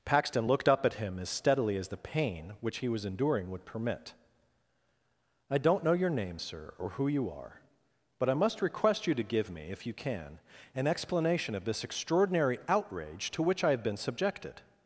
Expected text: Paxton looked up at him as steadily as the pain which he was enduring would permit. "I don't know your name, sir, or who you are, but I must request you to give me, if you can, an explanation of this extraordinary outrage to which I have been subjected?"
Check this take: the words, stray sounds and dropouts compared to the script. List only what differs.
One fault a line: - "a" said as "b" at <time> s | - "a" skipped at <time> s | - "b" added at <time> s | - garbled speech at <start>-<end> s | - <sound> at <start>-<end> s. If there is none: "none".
none